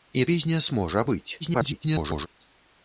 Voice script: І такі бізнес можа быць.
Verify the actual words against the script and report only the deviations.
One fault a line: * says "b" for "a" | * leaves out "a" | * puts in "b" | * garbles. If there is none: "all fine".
* leaves out "такі"
* garbles